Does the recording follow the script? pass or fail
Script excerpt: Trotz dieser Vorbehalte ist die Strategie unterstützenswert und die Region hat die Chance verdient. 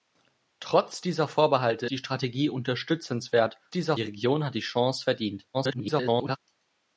fail